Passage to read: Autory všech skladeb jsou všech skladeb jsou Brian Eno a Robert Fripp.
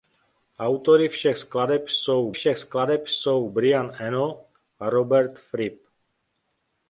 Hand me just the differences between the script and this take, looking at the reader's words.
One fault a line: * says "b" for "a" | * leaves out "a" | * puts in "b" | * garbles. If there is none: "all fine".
all fine